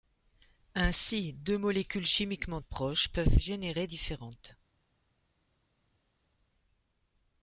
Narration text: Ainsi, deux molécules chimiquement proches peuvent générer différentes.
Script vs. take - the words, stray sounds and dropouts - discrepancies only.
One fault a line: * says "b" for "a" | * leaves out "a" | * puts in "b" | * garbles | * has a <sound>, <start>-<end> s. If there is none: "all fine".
all fine